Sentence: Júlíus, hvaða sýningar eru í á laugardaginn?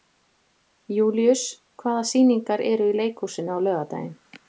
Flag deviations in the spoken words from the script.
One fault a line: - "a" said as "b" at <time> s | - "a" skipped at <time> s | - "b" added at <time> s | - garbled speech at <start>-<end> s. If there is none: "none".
- "leikhúsinu" added at 3.0 s